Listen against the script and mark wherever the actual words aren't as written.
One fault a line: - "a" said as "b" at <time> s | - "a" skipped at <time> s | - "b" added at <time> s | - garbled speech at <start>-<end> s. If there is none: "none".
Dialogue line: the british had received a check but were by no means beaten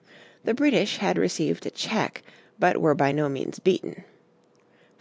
none